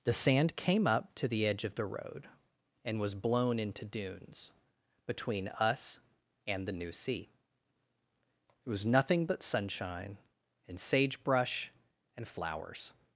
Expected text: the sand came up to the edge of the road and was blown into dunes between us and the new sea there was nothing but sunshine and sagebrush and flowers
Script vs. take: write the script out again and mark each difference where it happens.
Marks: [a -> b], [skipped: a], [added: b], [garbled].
the sand came up to the edge of the road and was blown into dunes between us and the new sea [there -> it] was nothing but sunshine and sagebrush and flowers